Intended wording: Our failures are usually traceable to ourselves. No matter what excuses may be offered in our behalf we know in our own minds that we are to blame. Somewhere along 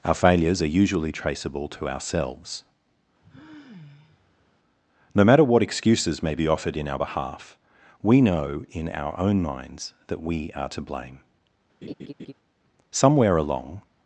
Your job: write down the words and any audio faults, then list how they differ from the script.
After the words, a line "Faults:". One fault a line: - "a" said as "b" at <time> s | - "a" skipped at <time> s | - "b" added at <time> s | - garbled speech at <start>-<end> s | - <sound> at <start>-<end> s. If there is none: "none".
Our failures are usually traceable to ourselves. No matter what excuses may be offered in our behalf we know in our own minds that we are to blame. Somewhere along
Faults:
- sigh at 3.2-4.5 s
- laugh at 11.8-12.3 s